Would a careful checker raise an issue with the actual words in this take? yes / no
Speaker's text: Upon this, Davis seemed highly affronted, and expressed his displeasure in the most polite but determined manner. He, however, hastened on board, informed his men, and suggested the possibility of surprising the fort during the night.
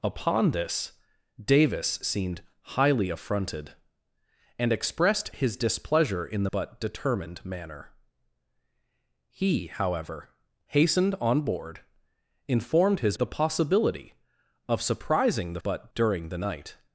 yes